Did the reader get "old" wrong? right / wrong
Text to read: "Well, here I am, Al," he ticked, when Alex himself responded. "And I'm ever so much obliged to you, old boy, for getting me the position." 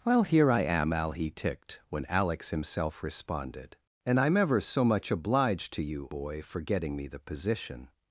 wrong